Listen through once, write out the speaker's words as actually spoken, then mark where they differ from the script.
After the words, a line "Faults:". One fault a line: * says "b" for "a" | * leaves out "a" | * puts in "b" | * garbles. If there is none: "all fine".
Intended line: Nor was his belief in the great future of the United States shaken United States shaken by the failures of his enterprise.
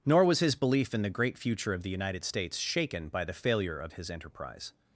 Nor was his belief in the great future of the United States shaken by the failure of his enterprise.
Faults:
* leaves out "United States shaken"
* says "failure" for "failures"